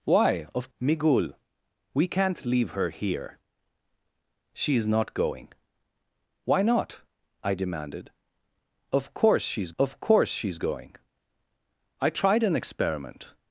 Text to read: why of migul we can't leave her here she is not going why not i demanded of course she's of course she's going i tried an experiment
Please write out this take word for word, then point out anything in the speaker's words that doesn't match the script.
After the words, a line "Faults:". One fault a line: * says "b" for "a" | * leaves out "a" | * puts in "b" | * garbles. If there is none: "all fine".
why of migul we can't leave her here she is not going why not i demanded of course she's of course she's going i tried an experiment
Faults:
all fine